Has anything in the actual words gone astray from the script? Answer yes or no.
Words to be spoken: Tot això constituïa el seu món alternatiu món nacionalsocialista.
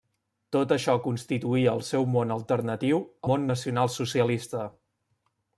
no